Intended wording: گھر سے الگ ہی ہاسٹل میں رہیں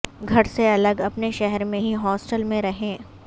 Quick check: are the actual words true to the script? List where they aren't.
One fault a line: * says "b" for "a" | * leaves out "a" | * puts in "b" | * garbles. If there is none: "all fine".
* puts in "اپنے شہر میں"